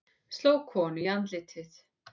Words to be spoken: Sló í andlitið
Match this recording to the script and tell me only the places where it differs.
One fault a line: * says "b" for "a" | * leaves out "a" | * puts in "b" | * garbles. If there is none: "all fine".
* puts in "konu"